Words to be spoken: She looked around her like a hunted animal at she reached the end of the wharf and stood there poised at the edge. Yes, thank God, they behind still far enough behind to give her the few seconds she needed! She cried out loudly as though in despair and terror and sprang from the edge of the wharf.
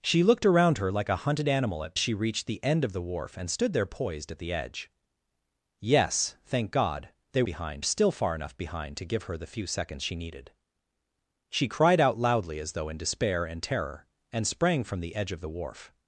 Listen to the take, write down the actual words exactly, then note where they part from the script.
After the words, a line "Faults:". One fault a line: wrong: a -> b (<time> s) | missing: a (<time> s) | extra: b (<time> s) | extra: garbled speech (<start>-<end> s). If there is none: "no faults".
She looked around her like a hunted animal at she reached the end of the wharf and stood there poised at the edge. Yes, thank God, they behind still far enough behind to give her the few seconds she needed! She cried out loudly as though in despair and terror and sprang from the edge of the wharf.
Faults:
no faults